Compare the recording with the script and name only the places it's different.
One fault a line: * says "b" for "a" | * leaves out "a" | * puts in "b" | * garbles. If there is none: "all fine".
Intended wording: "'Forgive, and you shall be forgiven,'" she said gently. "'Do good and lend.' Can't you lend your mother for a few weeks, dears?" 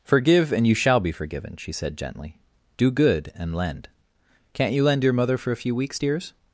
all fine